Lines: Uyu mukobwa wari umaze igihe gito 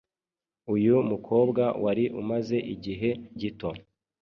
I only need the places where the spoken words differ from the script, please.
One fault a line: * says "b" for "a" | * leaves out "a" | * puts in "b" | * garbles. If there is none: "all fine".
all fine